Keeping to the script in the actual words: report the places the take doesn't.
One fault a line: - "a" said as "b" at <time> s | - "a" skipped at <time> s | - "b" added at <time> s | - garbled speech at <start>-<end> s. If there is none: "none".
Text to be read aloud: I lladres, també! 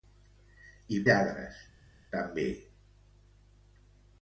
none